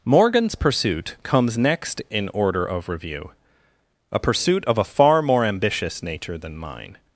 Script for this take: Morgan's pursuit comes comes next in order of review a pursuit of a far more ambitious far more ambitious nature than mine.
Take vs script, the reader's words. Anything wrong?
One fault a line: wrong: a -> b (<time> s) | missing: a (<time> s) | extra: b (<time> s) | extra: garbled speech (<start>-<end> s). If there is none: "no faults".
missing: comes (1.6 s)
missing: far more ambitious (6.0 s)